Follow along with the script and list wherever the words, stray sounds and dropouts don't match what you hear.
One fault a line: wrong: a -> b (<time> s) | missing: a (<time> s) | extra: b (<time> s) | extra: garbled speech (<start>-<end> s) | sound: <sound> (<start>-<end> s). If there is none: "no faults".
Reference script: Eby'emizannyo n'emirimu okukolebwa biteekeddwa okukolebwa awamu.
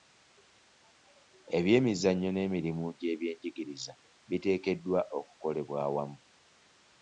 wrong: okukolebwa -> gy'ebyenjigiriza (3.0 s)